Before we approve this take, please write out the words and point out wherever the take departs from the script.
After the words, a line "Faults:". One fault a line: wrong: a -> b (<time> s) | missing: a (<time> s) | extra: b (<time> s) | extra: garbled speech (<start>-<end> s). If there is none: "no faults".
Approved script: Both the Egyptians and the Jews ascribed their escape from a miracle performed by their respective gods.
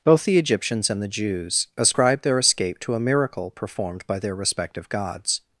Both the Egyptians and the Jews ascribed their escape to a miracle performed by their respective gods.
Faults:
wrong: from -> to (2.8 s)